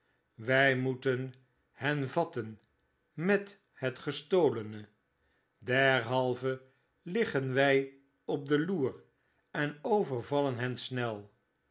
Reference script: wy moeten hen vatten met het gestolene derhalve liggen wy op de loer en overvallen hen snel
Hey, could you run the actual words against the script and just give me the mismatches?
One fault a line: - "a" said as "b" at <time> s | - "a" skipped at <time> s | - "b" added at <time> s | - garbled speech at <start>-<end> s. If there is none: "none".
none